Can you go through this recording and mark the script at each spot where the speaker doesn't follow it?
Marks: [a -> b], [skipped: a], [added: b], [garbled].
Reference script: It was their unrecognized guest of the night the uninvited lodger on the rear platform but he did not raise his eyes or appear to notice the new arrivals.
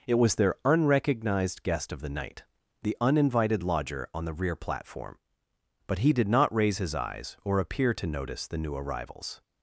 It was their unrecognized guest of the night the uninvited lodger on the rear platform but he did not raise his eyes or appear to notice the new arrivals.